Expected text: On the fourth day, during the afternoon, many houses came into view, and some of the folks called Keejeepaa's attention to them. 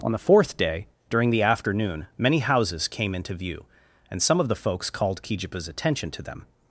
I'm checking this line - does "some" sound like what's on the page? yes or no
yes